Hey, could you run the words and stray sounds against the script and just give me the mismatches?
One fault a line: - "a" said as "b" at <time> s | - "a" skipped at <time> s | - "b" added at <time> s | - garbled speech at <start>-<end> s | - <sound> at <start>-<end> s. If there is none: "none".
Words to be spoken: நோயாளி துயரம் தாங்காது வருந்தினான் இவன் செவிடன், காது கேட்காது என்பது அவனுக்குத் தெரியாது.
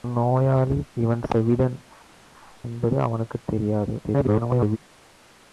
- "துயரம் தாங்காது வருந்தினான்" skipped at 0.8 s
- "காது கேட்காது" skipped at 1.8 s
- garbled speech at 4.0-4.8 s